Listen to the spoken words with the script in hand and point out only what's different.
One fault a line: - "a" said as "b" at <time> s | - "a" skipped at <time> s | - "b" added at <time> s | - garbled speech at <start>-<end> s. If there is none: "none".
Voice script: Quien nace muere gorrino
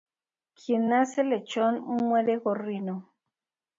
- "lechón" added at 1.2 s